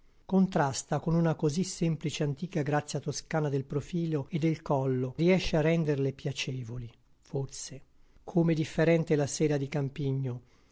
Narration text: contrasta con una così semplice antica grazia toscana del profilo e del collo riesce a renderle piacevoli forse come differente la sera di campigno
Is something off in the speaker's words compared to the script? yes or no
no